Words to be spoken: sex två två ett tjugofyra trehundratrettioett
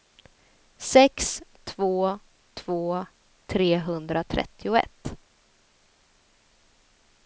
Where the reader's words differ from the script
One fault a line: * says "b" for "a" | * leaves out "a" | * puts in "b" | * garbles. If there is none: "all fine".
* leaves out "ett tjugofyra"